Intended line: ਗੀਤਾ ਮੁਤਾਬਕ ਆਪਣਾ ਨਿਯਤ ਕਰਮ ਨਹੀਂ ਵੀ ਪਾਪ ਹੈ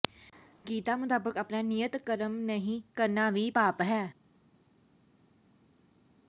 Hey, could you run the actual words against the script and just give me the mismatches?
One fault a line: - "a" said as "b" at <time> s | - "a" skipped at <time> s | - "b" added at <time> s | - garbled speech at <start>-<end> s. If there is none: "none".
- "ਕਰਨਾ" added at 3.0 s